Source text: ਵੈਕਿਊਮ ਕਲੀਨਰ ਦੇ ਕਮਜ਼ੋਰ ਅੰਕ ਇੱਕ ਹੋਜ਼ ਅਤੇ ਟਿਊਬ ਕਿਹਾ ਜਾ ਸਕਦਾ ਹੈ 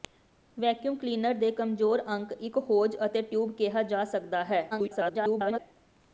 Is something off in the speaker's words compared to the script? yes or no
yes